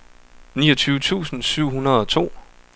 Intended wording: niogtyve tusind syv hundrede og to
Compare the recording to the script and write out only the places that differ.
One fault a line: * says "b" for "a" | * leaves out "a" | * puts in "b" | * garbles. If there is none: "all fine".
all fine